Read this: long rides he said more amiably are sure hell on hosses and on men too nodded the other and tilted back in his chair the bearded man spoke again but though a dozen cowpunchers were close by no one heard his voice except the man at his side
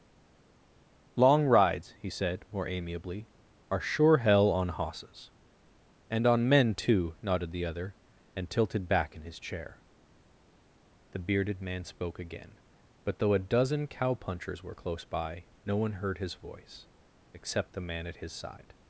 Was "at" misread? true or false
false